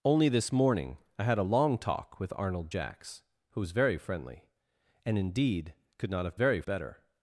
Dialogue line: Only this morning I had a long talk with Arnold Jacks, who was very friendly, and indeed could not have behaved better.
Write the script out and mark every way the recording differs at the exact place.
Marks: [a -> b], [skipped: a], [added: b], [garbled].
Only this morning I had a long talk with Arnold Jacks, who was very friendly, and indeed could not have [behaved -> very] better.